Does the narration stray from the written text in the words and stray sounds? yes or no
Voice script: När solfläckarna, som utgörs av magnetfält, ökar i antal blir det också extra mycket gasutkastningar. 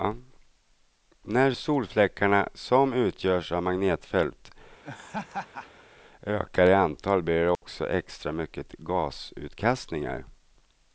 yes